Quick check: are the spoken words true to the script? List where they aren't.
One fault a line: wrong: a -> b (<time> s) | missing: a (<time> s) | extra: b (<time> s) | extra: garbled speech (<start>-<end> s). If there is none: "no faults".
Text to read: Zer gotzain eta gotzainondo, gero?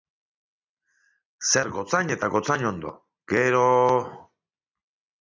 no faults